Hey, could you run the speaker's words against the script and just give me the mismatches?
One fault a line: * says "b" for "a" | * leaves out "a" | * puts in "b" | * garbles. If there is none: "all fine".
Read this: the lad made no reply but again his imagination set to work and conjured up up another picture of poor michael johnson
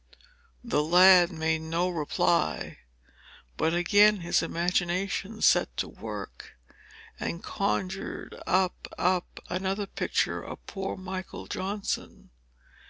all fine